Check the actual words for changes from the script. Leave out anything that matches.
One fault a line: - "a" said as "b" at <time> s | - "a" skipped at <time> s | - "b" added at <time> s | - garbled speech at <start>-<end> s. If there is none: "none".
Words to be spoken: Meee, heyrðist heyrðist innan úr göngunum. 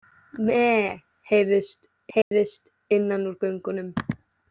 none